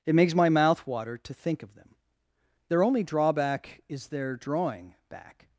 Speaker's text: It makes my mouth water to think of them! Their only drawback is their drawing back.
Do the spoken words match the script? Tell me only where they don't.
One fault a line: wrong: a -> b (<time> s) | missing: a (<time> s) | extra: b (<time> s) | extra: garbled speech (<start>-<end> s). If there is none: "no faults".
no faults